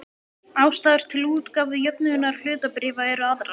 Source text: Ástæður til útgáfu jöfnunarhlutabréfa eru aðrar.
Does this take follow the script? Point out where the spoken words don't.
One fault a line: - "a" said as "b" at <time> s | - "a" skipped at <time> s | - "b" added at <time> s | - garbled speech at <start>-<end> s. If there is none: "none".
none